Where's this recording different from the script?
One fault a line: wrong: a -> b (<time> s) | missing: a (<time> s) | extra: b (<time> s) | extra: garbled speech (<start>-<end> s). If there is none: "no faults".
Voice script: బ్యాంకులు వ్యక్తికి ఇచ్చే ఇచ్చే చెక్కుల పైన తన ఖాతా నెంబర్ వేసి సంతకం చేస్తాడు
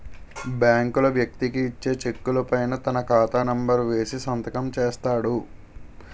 missing: ఇచ్చే (1.9 s)